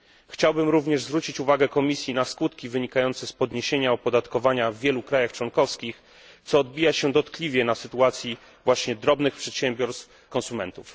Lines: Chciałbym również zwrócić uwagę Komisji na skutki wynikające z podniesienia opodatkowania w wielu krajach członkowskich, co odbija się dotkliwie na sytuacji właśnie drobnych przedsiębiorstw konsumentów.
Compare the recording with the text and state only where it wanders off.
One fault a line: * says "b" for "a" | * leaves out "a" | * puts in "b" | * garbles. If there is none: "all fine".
all fine